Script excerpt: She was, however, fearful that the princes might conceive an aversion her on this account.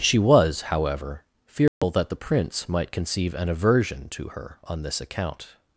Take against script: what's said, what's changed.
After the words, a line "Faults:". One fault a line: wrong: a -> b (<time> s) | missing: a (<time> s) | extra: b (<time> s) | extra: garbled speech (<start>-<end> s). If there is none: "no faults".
She was, however, fearful that the prince might conceive an aversion to her on this account.
Faults:
wrong: princes -> prince (2.2 s)
extra: to (4.1 s)